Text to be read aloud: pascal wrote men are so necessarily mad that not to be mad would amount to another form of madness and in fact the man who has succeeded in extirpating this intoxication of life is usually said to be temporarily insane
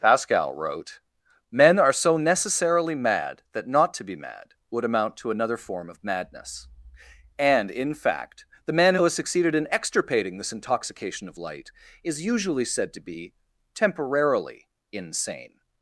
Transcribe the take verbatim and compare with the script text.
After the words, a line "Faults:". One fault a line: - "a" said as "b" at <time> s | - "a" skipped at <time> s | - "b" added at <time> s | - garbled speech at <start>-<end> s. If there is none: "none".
pascal wrote men are so necessarily mad that not to be mad would amount to another form of madness and in fact the man who has succeeded in extirpating this intoxication of light is usually said to be temporarily insane
Faults:
- "life" said as "light" at 11.4 s